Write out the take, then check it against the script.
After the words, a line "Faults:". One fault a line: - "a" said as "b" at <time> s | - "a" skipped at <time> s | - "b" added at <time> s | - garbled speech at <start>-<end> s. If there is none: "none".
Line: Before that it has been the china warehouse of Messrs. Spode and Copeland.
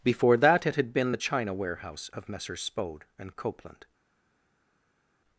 Before that it had been the china warehouse of Messrs. Spode and Copeland.
Faults:
- "has" said as "had" at 0.8 s